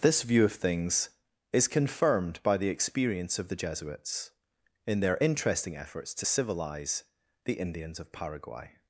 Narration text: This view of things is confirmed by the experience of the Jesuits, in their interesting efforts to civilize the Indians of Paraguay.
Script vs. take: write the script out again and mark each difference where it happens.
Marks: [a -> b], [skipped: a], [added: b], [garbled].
This view of things is confirmed by the experience of the Jesuits, in their interesting efforts to civilize the Indians of Paraguay.